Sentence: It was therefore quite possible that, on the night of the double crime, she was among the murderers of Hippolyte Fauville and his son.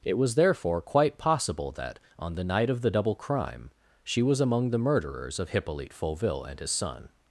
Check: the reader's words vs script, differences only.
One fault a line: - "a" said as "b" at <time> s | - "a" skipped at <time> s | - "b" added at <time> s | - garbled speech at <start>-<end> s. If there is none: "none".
none